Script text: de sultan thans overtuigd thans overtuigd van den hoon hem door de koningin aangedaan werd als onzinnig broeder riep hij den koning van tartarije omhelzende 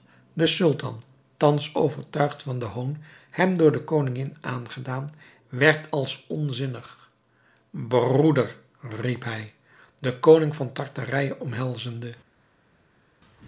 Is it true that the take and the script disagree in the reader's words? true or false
true